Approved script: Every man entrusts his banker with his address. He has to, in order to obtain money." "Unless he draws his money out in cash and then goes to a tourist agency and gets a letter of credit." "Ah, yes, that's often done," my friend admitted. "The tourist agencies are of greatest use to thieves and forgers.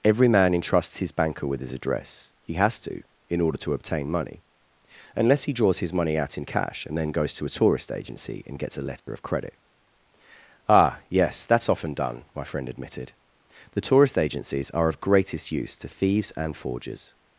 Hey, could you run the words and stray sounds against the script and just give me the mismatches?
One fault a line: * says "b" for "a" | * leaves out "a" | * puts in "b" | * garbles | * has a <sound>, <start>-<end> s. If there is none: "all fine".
* has a dropout, 9.0-9.1 s